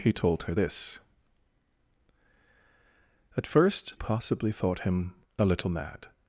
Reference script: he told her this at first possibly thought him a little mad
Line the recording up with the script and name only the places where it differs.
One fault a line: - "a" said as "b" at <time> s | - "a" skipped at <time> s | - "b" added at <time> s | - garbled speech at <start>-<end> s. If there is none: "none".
none